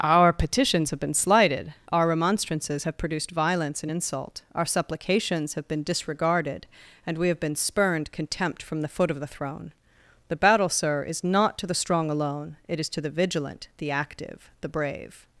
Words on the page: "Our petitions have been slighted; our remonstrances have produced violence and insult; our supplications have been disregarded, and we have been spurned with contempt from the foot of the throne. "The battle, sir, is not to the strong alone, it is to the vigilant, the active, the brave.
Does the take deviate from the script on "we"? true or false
false